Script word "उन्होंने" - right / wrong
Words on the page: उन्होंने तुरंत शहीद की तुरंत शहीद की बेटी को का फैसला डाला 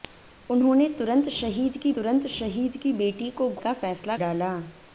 right